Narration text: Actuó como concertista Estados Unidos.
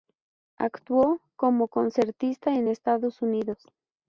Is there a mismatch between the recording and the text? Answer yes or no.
yes